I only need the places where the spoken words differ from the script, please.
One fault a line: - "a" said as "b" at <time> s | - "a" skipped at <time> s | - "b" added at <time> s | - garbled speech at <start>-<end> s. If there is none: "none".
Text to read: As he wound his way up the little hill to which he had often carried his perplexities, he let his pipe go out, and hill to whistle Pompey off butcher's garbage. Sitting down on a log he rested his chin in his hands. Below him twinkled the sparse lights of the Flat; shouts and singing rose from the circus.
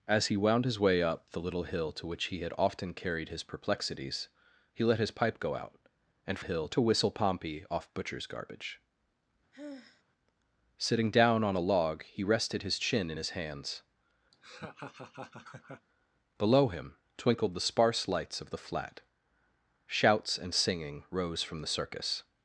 none